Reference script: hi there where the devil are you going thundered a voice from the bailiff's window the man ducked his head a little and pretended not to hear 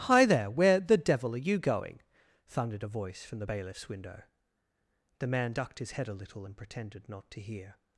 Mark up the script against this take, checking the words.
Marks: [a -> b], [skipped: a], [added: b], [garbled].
hi there where the devil are you going thundered a voice from the bailiff's window the man ducked his head a little and pretended not to hear